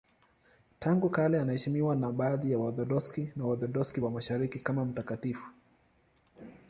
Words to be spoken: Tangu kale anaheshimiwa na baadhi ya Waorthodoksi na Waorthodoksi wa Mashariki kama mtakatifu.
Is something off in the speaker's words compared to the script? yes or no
no